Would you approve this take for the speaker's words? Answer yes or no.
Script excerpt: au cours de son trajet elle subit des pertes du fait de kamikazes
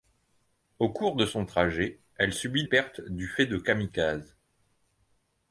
no